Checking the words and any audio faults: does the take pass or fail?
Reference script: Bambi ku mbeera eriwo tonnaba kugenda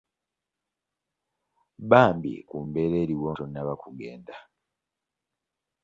pass